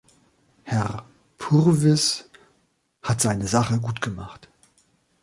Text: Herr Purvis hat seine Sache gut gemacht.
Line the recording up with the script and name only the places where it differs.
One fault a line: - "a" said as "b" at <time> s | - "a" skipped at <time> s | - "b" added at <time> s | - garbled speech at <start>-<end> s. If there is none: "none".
none